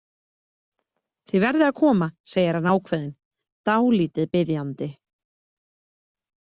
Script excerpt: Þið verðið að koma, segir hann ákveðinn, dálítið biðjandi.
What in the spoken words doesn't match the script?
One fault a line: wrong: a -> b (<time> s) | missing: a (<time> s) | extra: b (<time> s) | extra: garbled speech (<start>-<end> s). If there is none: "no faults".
no faults